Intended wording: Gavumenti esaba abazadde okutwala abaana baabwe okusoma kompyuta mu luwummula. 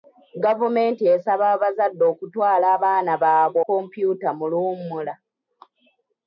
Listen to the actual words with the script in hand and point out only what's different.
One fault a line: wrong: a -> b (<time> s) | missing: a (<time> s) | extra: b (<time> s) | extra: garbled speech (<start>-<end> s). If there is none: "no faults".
missing: okusoma (3.6 s)